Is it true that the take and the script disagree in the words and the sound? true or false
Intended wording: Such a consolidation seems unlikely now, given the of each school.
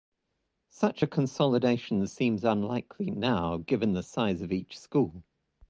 true